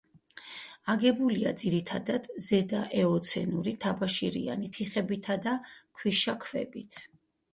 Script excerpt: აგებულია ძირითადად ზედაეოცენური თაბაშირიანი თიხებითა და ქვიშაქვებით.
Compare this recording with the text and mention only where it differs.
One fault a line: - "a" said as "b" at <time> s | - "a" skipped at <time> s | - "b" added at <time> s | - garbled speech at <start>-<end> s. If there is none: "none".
none